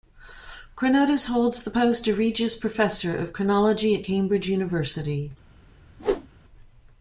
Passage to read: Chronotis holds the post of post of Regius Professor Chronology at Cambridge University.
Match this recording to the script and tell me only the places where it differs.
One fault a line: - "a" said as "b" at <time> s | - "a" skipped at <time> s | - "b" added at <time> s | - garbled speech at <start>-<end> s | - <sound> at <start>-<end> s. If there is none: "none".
- "post of" skipped at 2.2 s
- "of" added at 3.2 s
- whoosh at 6.0-6.3 s